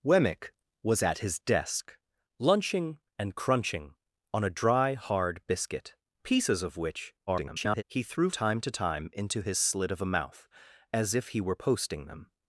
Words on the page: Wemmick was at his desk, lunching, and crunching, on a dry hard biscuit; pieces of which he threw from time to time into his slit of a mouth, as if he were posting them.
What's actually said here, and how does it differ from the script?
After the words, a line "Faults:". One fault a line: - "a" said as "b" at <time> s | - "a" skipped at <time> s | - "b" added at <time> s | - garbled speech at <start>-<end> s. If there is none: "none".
Wemmick was at his desk, lunching, and crunching, on a dry hard biscuit; pieces of which [garbled] he threw time to time into his slit of a mouth, as if he were posting them.
Faults:
- garbled speech at 7.3-7.8 s
- "from" skipped at 8.3 s